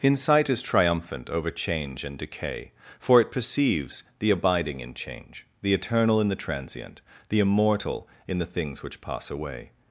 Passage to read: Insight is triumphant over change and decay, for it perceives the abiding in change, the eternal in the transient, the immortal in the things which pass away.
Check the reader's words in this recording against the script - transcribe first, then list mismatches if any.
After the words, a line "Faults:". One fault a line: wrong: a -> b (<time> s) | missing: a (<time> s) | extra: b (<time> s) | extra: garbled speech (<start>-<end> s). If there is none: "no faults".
Insight is triumphant over change and decay, for it perceives the abiding in change, the eternal in the transient, the immortal in the things which pass away.
Faults:
no faults